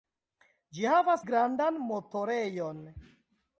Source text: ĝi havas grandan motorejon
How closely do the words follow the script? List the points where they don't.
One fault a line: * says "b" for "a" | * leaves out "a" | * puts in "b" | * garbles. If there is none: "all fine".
all fine